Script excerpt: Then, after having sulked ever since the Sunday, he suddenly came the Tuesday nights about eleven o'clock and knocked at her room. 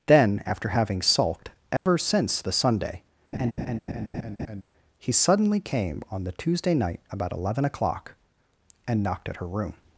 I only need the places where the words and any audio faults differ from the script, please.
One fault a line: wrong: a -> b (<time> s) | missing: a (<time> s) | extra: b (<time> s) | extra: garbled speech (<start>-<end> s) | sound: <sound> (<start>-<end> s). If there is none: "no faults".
sound: dropout (1.8-1.9 s)
sound: laugh (3.3-4.6 s)
extra: on (6.1 s)
wrong: nights -> night (6.7 s)